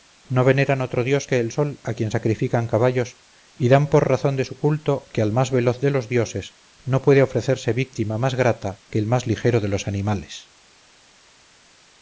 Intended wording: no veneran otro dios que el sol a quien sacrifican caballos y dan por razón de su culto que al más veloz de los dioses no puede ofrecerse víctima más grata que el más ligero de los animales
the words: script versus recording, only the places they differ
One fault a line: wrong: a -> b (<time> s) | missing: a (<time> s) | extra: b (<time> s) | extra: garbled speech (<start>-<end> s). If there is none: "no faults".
no faults